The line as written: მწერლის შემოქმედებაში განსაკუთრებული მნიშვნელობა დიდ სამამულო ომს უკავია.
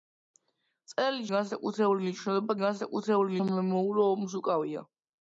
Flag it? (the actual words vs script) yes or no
yes